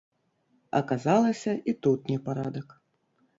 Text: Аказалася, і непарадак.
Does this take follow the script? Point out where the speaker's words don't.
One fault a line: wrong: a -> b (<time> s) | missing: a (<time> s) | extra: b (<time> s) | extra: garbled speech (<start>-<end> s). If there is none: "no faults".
extra: тут (1.9 s)